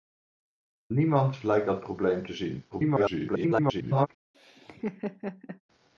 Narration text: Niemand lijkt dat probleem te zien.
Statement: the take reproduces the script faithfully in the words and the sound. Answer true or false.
false